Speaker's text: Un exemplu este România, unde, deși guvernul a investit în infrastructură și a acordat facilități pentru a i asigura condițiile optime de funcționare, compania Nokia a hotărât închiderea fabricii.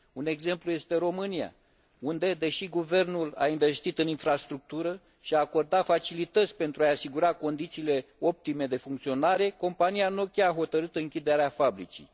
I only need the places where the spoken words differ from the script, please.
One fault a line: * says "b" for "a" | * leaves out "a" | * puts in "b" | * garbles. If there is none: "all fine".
all fine